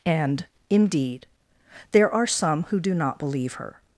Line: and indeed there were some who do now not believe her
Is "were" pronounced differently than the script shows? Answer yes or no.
yes